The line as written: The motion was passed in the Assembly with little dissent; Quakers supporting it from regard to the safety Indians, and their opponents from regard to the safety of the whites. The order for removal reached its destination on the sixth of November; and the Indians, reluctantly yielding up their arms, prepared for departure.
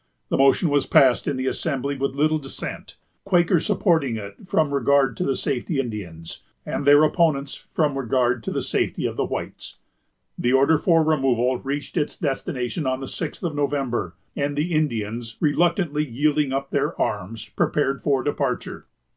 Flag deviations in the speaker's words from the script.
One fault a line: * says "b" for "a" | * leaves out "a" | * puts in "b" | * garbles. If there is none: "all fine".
all fine